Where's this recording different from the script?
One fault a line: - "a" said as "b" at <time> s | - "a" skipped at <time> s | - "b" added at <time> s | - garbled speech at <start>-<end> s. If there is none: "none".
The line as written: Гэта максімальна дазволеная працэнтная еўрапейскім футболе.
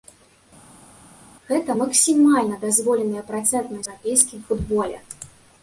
none